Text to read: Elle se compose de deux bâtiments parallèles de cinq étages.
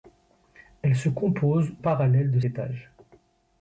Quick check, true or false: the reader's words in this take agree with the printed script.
false